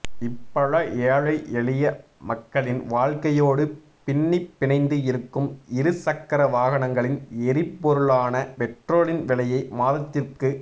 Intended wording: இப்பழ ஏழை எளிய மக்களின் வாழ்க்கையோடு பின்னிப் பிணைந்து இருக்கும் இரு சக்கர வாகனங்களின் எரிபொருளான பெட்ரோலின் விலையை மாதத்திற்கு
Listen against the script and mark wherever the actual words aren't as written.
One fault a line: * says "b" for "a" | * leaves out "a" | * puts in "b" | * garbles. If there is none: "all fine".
all fine